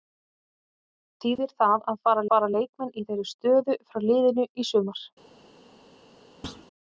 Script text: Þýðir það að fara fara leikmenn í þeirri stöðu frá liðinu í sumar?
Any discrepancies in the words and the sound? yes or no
yes